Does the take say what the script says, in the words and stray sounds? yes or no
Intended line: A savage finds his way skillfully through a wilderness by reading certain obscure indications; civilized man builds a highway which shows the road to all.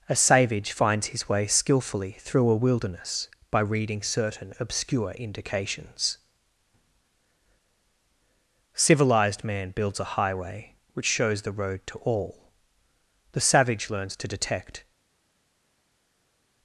no